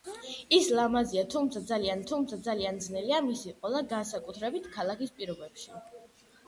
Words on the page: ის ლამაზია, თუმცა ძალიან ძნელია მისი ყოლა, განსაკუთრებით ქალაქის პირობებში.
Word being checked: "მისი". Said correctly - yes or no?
yes